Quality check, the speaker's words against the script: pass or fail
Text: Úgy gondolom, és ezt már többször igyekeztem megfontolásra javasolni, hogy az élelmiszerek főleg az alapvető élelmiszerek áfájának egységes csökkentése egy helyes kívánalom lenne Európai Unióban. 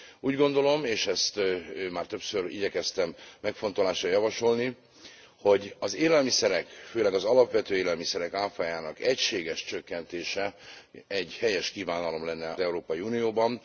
pass